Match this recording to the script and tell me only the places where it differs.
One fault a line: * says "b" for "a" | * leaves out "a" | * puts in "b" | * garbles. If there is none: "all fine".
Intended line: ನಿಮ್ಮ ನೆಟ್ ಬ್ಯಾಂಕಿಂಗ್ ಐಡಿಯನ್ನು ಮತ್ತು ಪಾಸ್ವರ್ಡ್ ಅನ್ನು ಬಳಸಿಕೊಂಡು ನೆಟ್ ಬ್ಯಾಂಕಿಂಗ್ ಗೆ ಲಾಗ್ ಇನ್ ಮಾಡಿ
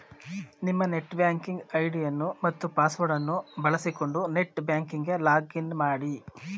all fine